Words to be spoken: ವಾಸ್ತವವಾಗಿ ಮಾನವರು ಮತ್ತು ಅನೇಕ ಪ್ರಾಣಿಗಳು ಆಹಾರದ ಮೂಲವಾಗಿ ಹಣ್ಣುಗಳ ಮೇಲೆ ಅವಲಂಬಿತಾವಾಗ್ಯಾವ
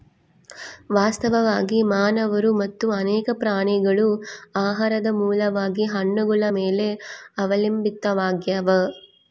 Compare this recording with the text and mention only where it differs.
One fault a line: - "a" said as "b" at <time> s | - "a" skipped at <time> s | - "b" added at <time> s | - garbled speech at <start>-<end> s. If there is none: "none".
none